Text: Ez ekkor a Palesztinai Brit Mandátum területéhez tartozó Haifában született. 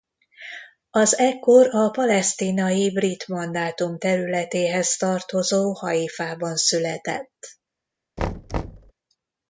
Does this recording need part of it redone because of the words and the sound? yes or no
yes